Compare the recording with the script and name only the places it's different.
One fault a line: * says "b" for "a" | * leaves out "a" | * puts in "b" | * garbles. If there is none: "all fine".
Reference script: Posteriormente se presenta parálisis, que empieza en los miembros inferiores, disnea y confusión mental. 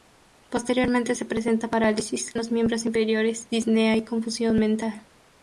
* leaves out "que empieza"